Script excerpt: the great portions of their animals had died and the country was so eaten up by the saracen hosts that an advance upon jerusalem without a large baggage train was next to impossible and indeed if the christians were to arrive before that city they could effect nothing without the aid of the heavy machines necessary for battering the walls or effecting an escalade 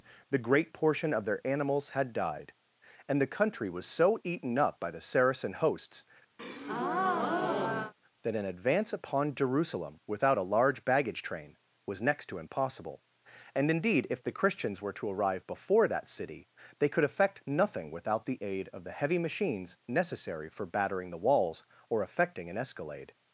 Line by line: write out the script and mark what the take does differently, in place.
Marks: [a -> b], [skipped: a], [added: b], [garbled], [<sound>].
the great [portions -> portion] of their animals had died and the country was so eaten up by the saracen hosts [breath] that an advance upon jerusalem without a large baggage train was next to impossible and indeed if the christians were to arrive before that city they could effect nothing without the aid of the heavy machines necessary for battering the walls or effecting an escalade